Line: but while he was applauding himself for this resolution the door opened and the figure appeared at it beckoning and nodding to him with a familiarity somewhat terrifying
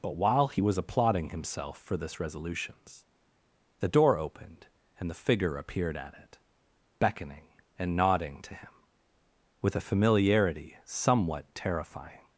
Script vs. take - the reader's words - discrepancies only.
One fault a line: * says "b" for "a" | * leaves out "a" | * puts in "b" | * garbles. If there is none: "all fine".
* says "resolutions" for "resolution"